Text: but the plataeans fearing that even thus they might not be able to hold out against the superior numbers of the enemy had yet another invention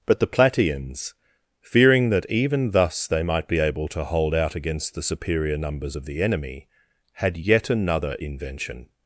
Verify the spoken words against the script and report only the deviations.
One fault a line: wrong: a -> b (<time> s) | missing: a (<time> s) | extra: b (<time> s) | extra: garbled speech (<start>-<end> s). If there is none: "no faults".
missing: not (3.5 s)